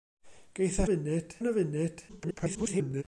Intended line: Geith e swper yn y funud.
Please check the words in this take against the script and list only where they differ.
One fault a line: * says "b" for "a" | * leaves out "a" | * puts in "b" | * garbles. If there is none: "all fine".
* says "funud" for "swper"
* garbles